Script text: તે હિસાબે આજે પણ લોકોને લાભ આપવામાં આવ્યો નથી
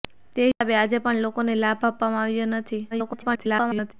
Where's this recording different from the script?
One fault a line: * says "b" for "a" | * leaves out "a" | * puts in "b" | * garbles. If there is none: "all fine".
* garbles